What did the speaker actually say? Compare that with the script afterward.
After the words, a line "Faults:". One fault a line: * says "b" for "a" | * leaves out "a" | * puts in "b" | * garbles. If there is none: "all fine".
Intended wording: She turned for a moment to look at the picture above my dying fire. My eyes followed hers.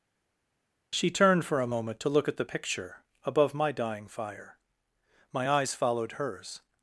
She turned for a moment to look at the picture above my dying fire. My eyes followed hers.
Faults:
all fine